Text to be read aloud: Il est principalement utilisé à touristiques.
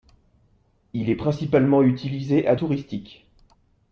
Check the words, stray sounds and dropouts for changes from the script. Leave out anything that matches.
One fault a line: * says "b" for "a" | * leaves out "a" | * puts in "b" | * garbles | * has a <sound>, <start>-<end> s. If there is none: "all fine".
all fine